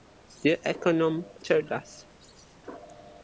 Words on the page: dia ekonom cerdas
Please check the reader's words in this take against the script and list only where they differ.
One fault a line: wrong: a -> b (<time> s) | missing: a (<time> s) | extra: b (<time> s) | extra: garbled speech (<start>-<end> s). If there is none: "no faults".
no faults